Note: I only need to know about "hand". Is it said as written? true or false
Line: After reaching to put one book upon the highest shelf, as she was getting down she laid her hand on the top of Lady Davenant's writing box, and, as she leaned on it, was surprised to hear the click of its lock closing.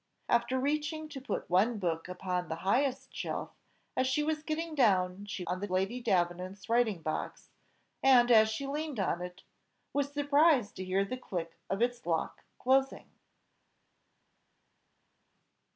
false